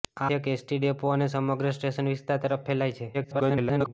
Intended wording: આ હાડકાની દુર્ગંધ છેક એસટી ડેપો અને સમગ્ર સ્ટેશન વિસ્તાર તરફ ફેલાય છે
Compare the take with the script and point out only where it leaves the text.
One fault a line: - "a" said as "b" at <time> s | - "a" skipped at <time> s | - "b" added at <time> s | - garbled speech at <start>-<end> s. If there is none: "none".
- "હાડકાની દુર્ગંધ" skipped at 0.3 s
- garbled speech at 3.1-3.9 s